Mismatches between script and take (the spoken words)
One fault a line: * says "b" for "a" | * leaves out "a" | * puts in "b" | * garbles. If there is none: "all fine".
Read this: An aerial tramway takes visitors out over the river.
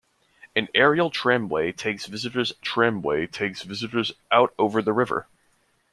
* puts in "tramway takes visitors"